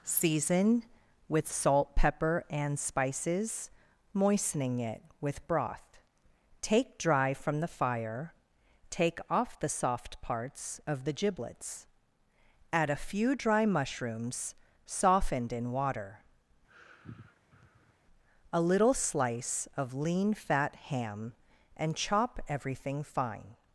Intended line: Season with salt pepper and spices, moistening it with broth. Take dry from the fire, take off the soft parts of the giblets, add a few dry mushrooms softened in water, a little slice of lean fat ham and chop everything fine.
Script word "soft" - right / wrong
right